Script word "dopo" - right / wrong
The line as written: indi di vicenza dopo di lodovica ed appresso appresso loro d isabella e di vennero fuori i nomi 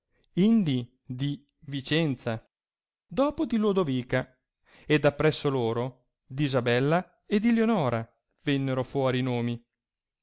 right